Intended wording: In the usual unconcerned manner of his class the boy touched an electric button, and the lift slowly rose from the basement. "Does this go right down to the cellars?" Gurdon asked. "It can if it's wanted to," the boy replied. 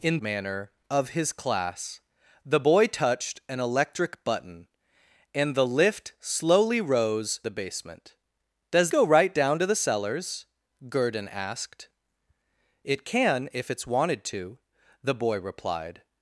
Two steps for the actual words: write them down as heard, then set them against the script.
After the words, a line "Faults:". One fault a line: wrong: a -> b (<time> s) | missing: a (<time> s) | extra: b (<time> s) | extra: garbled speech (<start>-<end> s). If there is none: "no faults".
In manner of his class the boy touched an electric button, and the lift slowly rose the basement. "Does go right down to the cellars?" Gurdon asked. "It can if it's wanted to," the boy replied.
Faults:
missing: the usual unconcerned (0.2 s)
missing: from (7.4 s)
missing: this (8.9 s)